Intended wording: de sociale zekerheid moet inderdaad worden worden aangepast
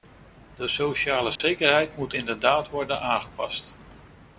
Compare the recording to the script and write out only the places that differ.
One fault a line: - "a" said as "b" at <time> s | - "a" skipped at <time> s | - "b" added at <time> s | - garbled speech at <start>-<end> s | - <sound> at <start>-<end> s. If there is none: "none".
- dropout at 1.4-1.4 s
- "worden" skipped at 3.0 s